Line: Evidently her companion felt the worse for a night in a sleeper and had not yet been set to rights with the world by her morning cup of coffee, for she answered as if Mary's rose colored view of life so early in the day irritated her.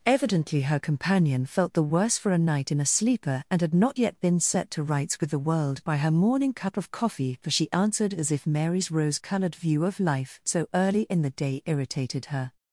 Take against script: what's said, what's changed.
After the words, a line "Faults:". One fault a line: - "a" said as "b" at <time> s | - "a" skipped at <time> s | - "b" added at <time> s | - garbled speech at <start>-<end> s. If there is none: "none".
Evidently her companion felt the worse for a night in a sleeper and had not yet been set to rights with the world by her morning cup of coffee, for she answered as if Mary's rose colored view of life so early in the day irritated her.
Faults:
none